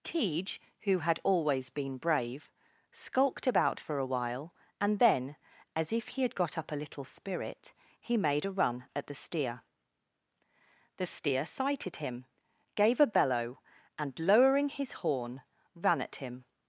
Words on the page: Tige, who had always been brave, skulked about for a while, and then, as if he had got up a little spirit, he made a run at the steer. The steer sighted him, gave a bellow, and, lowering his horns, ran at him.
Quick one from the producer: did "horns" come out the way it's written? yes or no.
no